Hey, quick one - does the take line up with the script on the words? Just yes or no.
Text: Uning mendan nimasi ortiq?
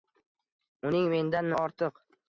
no